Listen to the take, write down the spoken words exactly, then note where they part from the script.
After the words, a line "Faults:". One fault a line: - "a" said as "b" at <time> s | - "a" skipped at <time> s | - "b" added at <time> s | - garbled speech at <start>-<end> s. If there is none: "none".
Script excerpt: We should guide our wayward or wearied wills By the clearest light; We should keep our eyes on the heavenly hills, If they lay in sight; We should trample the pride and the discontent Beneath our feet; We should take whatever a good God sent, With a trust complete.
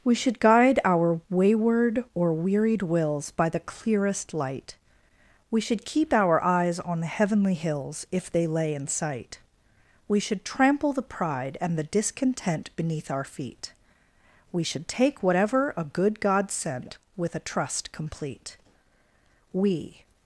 We should guide our wayward or wearied wills By the clearest light; We should keep our eyes on the heavenly hills, If they lay in sight; We should trample the pride and the discontent Beneath our feet; We should take whatever a good God sent, With a trust complete. We
Faults:
- "We" added at 19.5 s